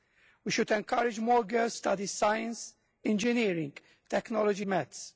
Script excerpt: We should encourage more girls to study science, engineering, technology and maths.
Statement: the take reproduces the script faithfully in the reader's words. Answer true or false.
false